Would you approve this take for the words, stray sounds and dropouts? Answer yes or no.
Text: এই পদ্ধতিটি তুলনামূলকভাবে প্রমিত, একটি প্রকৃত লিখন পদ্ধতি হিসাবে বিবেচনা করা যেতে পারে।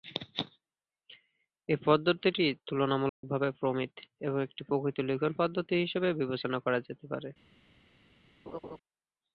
no